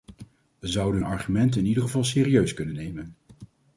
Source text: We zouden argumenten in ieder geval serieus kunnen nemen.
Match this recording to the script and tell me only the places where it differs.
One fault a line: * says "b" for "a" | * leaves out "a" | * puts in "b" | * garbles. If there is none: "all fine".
all fine